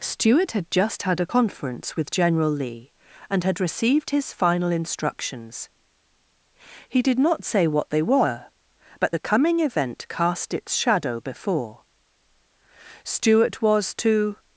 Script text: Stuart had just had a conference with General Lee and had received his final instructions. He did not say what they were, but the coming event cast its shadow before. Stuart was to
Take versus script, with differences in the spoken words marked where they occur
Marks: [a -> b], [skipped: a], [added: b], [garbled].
Stuart had just had a conference with General Lee and had received his final instructions. He did not say what they were, but the coming event cast its shadow before. Stuart was to